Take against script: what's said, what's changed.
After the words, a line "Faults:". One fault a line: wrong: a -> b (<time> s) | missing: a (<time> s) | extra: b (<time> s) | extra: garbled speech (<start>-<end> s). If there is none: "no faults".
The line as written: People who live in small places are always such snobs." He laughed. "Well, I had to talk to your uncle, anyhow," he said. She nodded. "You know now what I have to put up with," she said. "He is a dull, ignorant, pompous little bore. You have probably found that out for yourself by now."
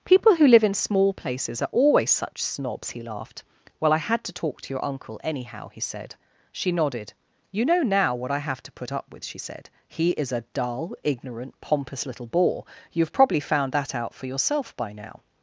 People who live in small places are always such snobs." He laughed. "Well, I had to talk to your uncle, anyhow," he said. She nodded. "You know now what I have to put up with," she said. "He is a dull, ignorant, pompous little bore. You have probably found that out for yourself by now."
Faults:
no faults